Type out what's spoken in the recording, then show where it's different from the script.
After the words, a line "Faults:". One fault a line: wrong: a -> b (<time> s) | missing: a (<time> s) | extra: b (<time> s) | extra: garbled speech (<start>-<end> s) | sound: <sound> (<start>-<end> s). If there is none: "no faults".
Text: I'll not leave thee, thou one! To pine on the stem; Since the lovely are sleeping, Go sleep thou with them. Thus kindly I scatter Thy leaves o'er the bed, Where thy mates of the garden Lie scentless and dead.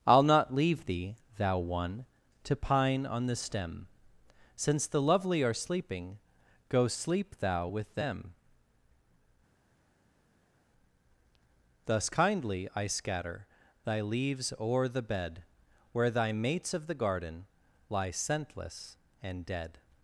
I'll not leave thee, thou one! To pine on the stem; Since the lovely are sleeping, Go sleep thou with them. Thus kindly I scatter Thy leaves o'er the bed, Where thy mates of the garden Lie scentless and dead.
Faults:
no faults